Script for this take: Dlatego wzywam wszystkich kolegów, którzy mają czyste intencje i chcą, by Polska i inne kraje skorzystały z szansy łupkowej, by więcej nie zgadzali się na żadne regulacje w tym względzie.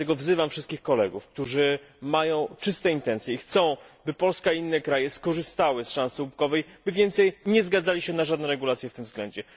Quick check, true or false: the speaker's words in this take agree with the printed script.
true